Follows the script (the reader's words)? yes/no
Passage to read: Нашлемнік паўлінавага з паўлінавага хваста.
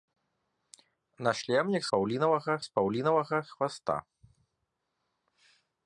yes